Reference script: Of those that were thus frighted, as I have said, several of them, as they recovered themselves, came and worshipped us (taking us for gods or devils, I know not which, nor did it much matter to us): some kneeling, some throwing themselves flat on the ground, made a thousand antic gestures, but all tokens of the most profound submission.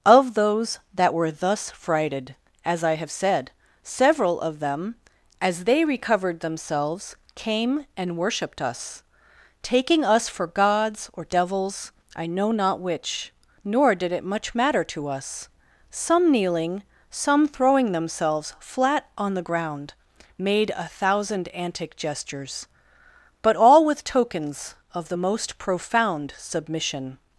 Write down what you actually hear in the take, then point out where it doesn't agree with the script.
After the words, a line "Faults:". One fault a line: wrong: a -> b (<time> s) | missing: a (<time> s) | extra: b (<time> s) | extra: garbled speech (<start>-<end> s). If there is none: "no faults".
Of those that were thus frighted, as I have said, several of them, as they recovered themselves, came and worshipped us (taking us for gods or devils, I know not which, nor did it much matter to us): some kneeling, some throwing themselves flat on the ground, made a thousand antic gestures, but all with tokens of the most profound submission.
Faults:
extra: with (23.9 s)